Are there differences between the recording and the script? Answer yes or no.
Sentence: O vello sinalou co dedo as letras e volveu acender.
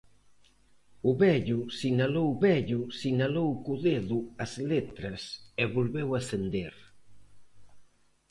yes